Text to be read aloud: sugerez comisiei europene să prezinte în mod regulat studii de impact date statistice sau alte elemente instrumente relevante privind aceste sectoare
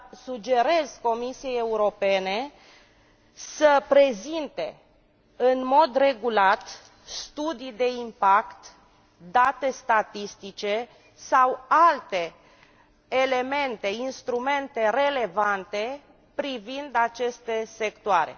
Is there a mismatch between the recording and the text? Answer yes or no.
no